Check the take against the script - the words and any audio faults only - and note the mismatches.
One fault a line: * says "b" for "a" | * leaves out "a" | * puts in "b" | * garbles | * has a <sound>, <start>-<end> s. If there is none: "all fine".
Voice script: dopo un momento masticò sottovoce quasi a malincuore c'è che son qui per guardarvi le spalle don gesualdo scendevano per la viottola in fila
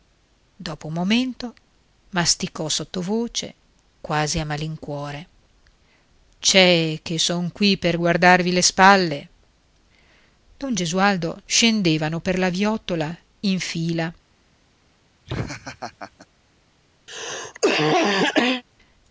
* has a laugh, 15.3-16.3 s
* has a cough, 17.1-18.6 s